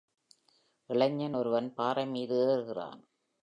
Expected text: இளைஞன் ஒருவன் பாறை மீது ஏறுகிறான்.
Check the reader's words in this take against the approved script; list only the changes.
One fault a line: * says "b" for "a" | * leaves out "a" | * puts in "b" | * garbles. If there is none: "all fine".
all fine